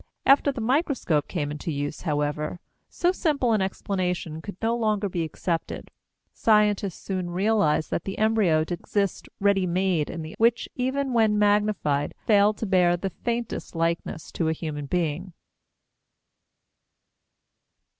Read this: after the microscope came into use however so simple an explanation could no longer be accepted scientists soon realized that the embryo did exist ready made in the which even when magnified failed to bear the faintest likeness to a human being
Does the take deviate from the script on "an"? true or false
false